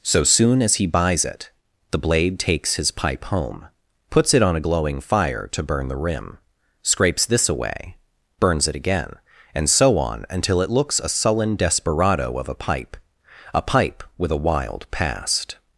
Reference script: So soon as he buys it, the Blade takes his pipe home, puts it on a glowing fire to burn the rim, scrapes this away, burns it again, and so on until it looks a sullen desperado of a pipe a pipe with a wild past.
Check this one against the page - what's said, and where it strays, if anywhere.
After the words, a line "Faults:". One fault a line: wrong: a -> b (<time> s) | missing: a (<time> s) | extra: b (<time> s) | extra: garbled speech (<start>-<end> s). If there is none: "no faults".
So soon as he buys it, the Blade takes his pipe home, puts it on a glowing fire to burn the rim, scrapes this away, burns it again, and so on until it looks a sullen desperado of a pipe a pipe with a wild past.
Faults:
no faults